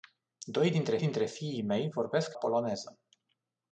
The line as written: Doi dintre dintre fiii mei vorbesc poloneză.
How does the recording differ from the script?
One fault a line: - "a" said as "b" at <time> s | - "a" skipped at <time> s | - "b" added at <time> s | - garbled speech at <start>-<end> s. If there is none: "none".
none